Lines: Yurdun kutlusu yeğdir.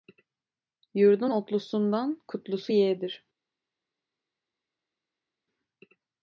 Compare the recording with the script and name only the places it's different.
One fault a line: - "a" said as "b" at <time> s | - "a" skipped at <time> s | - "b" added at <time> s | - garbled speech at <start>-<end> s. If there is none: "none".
- "otlusundan" added at 1.3 s